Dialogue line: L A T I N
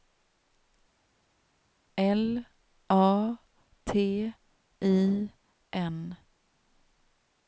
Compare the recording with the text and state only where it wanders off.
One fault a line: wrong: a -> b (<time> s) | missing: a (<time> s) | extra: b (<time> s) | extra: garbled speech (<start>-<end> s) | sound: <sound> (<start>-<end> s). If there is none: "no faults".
no faults